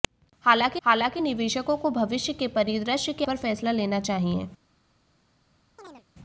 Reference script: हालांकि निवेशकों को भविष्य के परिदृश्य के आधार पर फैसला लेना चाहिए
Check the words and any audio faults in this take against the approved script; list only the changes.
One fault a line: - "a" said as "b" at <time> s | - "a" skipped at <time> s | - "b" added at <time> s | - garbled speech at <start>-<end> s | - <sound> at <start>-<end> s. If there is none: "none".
- "हालांकि" added at 0.8 s
- "आधार" skipped at 3.2 s
- chirp at 5.8-6.0 s